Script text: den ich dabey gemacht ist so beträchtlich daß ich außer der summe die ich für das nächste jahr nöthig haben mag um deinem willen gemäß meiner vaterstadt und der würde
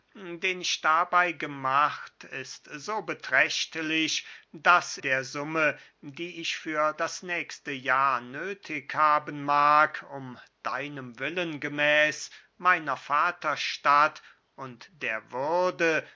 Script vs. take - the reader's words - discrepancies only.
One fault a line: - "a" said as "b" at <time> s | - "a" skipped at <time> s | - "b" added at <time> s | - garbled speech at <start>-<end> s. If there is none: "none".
- "ich außer" skipped at 5.0 s